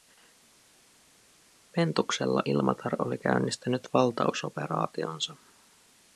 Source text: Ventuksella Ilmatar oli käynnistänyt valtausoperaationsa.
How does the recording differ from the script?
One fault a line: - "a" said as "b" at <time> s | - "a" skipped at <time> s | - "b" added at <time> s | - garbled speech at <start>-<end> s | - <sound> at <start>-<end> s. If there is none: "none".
none